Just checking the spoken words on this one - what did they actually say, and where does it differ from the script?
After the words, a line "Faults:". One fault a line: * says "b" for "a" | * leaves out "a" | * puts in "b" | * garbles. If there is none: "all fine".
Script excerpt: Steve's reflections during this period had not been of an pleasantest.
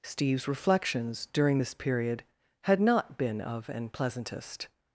Steve's reflections during this period had not been of an pleasantest.
Faults:
all fine